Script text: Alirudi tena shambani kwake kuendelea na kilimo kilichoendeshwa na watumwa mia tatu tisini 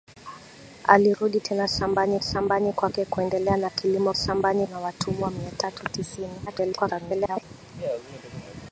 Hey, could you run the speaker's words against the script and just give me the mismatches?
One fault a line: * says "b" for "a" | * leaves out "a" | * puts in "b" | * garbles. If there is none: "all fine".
* puts in "shambani"
* says "shambani" for "kilichoendeshwa"
* garbles